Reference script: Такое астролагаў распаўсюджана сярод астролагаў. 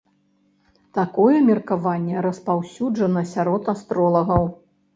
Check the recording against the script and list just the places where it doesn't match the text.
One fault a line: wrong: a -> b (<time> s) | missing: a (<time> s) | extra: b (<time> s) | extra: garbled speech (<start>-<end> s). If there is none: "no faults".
wrong: астролагаў -> меркаванне (1.5 s)